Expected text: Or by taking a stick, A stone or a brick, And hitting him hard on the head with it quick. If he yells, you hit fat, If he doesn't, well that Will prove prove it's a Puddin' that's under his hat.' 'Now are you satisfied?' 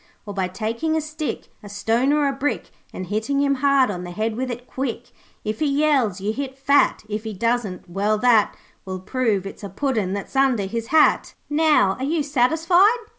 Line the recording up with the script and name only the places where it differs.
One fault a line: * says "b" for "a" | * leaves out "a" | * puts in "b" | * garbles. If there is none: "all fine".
* leaves out "prove"